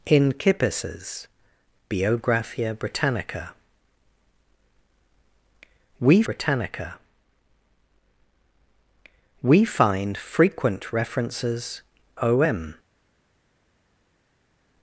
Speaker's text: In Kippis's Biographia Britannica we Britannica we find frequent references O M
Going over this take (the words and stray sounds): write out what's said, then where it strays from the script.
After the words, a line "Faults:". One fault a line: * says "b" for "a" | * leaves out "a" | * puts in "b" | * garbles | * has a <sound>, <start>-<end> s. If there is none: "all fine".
In Kippis's Biographia Britannica we Britannica we find frequent references O M
Faults:
all fine